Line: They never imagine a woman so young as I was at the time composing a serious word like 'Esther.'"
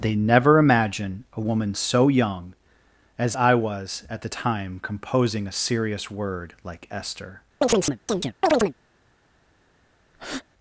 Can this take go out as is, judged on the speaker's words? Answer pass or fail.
pass